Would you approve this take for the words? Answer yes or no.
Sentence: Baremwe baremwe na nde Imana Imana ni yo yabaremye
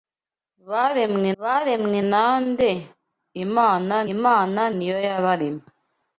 yes